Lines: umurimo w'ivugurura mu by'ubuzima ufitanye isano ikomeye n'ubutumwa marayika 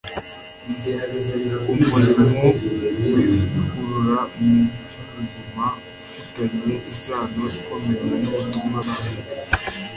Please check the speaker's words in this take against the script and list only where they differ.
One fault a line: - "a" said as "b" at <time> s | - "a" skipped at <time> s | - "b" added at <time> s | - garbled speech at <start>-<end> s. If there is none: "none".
none